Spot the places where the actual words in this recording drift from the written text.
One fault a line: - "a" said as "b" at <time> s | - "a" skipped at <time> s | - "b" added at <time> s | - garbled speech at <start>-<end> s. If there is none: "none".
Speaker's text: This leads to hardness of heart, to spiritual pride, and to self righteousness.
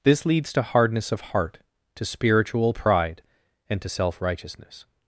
none